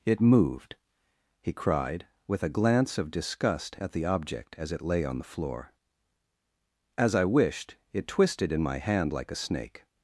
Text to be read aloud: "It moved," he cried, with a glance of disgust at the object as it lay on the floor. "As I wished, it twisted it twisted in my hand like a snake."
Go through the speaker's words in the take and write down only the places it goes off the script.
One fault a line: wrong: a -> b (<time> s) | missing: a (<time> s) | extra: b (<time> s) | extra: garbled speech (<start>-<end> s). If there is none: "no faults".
missing: it twisted (8.5 s)